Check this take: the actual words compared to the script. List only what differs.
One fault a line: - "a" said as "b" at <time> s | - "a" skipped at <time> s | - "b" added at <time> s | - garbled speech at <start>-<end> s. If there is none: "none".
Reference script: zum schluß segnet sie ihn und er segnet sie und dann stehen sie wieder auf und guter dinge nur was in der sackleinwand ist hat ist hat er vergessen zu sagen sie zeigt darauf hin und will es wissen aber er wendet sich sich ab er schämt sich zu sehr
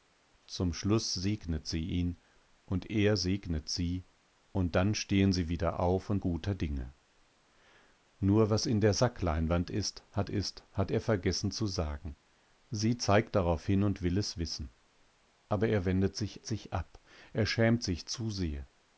none